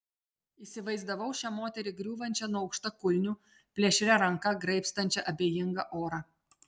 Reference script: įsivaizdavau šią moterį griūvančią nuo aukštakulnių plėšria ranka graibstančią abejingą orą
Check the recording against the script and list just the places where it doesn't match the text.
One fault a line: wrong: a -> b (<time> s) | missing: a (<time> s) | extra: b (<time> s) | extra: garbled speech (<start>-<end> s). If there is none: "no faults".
no faults